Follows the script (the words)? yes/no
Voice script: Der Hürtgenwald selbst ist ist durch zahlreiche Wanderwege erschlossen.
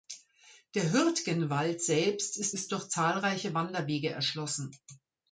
yes